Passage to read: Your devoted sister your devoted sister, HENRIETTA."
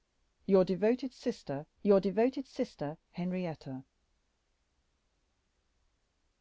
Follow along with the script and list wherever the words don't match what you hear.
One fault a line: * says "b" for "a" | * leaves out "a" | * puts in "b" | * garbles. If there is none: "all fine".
all fine